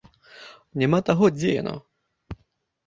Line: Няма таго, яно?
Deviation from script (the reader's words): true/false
true